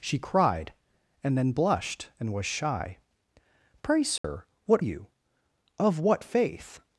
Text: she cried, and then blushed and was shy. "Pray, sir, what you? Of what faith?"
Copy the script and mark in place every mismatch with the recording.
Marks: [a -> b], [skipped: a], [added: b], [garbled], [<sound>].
she cried, and then blushed and was shy. "Pray, sir, [dropout] what you? Of what faith?"